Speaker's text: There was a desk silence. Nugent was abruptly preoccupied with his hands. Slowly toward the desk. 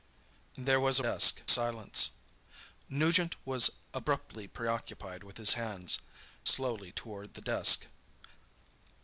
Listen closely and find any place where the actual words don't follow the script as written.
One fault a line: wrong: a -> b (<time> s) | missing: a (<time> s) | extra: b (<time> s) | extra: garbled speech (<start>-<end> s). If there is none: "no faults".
no faults